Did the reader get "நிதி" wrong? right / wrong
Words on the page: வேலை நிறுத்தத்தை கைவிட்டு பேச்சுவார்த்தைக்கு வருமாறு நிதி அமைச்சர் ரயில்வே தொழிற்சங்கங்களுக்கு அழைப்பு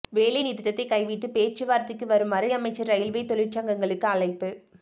wrong